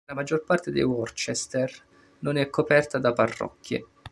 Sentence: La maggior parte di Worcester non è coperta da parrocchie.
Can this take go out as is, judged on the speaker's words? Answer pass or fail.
pass